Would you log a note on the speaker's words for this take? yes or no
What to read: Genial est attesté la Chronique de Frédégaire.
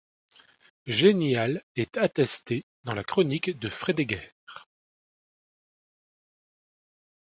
yes